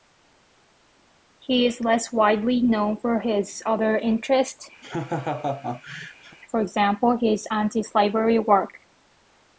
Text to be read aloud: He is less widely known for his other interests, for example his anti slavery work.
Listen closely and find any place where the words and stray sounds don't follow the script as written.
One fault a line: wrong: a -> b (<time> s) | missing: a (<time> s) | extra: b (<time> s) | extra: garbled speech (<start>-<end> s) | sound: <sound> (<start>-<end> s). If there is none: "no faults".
sound: laugh (4.8-6.4 s)